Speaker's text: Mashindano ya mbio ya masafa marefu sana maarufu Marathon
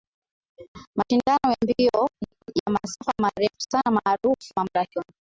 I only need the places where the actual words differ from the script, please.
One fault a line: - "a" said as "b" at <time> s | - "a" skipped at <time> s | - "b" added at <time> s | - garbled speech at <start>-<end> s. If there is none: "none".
none